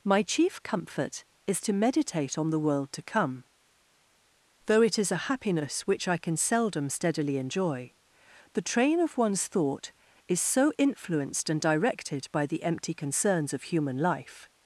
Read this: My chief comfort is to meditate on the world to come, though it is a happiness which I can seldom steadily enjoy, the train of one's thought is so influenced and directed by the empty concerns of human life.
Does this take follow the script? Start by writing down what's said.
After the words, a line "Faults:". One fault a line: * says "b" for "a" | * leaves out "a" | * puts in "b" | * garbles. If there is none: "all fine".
My chief comfort is to meditate on the world to come, though it is a happiness which I can seldom steadily enjoy, the train of one's thought is so influenced and directed by the empty concerns of human life.
Faults:
all fine